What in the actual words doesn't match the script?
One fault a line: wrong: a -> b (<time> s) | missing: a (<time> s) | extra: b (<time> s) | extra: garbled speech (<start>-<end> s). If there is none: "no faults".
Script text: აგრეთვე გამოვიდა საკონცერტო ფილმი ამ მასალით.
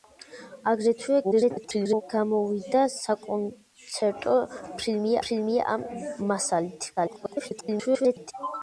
extra: garbled speech (1.2-2.0 s)
extra: ფილმი (5.3 s)
extra: garbled speech (7.0-8.3 s)